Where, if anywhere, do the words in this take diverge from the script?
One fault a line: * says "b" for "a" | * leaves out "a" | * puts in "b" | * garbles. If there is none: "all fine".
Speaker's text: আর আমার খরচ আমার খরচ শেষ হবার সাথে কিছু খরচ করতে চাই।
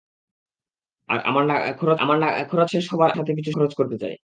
all fine